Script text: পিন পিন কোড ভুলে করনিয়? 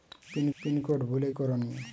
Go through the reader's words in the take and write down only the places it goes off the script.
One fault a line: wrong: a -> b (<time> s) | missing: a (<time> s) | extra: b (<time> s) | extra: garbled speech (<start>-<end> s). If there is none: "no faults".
no faults